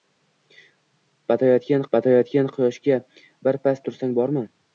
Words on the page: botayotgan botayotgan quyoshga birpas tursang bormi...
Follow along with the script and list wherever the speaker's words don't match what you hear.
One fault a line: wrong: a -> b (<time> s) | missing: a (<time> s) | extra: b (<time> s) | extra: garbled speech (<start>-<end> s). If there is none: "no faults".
no faults